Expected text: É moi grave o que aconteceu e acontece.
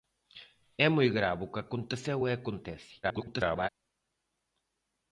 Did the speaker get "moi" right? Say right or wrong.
right